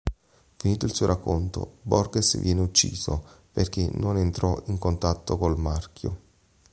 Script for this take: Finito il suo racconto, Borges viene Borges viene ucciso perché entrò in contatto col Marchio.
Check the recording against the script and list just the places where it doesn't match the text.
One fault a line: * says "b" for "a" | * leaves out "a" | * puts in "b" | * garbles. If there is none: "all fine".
* leaves out "Borges viene"
* puts in "non"